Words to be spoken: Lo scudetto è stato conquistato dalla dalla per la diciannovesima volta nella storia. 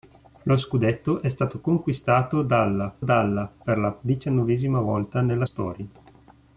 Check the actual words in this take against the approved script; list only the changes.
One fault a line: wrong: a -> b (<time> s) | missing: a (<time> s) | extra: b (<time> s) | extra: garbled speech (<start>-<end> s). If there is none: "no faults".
no faults